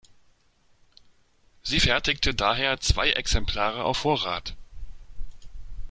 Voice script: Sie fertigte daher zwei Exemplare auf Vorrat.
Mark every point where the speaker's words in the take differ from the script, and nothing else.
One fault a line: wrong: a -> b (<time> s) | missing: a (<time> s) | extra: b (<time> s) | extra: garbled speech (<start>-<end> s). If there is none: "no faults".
no faults